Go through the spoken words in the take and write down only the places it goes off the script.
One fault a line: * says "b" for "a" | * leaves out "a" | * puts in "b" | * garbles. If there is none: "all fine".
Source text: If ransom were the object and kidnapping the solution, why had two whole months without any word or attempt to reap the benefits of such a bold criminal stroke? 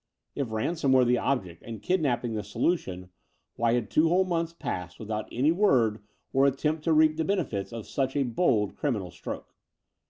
* puts in "passed"